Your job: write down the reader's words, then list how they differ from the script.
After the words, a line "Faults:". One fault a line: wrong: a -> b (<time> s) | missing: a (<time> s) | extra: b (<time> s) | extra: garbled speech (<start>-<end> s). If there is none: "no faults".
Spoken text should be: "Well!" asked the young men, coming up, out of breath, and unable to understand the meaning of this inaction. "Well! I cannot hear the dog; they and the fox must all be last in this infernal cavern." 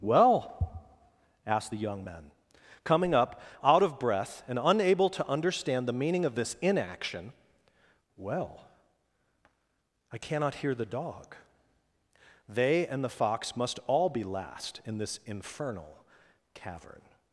"Well!" asked the young men, coming up, out of breath, and unable to understand the meaning of this inaction. "Well! I cannot hear the dog; they and the fox must all be last in this infernal cavern."
Faults:
no faults